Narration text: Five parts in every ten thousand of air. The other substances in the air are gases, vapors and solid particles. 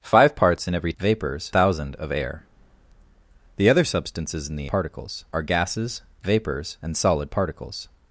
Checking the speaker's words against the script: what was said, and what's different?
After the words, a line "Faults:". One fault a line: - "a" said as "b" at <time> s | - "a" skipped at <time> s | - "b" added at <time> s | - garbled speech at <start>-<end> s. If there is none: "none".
Five parts in every vapors thousand of air. The other substances in the particles are gases, vapors and solid particles.
Faults:
- "ten" said as "vapors" at 1.0 s
- "air" said as "particles" at 4.7 s